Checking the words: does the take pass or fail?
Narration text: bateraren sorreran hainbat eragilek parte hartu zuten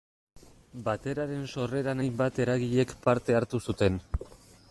pass